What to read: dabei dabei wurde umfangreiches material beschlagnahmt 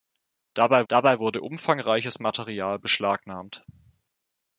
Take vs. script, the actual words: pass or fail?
pass